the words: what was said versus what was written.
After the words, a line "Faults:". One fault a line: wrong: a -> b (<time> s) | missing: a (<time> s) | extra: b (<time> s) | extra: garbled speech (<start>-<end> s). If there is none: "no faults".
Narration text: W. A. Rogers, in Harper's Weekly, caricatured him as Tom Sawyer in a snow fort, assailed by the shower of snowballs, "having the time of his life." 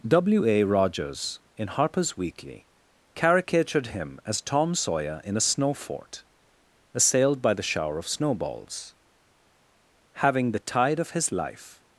W. A. Rogers, in Harper's Weekly, caricatured him as Tom Sawyer in a snow fort, assailed by the shower of snowballs, "having the tide of his life."
Faults:
wrong: time -> tide (10.6 s)